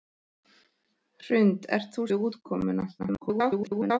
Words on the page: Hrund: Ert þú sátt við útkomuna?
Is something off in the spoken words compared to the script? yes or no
yes